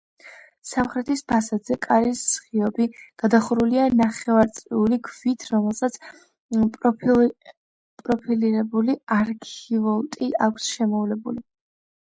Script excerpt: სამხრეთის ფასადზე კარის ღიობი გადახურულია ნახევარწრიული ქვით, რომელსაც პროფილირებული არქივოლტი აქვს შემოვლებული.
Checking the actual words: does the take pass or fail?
pass